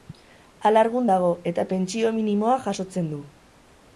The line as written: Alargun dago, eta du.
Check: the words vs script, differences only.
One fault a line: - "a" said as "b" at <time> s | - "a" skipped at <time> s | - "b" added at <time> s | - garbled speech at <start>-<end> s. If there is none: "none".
- "pentsio minimoa jasotzen" added at 1.7 s